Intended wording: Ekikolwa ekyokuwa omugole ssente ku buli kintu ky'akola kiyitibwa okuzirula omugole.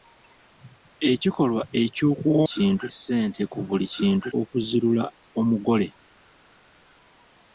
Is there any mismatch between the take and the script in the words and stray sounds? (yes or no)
yes